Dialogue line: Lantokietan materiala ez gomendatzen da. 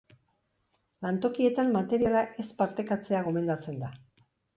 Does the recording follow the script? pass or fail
fail